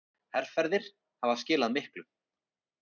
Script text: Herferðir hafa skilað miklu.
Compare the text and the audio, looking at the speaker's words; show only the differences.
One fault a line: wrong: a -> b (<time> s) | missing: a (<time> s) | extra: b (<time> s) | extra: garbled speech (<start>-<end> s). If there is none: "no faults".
no faults